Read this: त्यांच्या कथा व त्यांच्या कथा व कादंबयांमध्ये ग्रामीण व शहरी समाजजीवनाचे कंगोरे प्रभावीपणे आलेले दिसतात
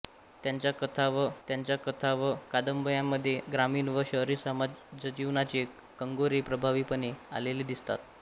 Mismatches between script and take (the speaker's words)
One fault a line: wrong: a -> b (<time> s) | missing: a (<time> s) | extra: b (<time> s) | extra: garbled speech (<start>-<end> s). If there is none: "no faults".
no faults